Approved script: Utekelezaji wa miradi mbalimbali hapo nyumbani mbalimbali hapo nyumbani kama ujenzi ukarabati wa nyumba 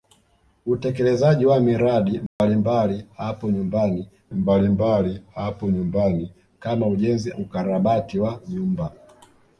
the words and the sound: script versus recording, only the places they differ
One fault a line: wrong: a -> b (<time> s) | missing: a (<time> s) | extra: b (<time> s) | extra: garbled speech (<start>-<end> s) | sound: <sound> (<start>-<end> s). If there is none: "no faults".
sound: dropout (2.3-2.4 s)